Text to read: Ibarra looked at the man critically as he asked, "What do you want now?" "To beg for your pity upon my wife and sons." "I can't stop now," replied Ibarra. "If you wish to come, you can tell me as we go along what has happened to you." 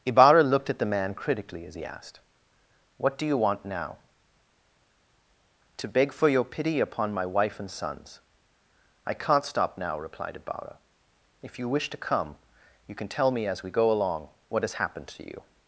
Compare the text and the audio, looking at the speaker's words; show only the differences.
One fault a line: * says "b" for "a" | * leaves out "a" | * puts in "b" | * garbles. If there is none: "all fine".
all fine